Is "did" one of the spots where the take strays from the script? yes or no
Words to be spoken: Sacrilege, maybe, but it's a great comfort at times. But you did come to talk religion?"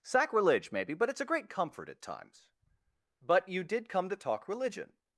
no